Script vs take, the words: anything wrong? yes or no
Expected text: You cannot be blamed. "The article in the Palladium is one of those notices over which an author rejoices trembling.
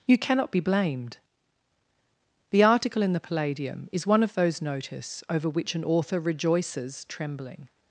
yes